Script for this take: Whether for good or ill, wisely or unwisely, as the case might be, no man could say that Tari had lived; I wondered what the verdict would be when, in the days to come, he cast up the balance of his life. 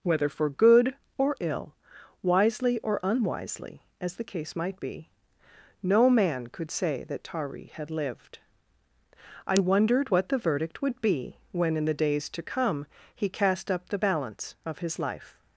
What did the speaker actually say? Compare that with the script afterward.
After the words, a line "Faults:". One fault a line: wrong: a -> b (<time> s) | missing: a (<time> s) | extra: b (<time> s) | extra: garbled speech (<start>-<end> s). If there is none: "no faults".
Whether for good or ill, wisely or unwisely, as the case might be, no man could say that Tari had lived; I wondered what the verdict would be when, in the days to come, he cast up the balance of his life.
Faults:
no faults